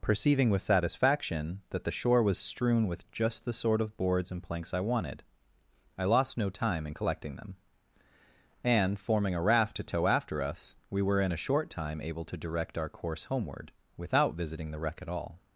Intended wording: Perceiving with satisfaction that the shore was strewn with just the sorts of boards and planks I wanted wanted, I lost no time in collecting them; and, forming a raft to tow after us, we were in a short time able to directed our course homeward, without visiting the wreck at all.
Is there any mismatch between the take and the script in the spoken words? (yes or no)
yes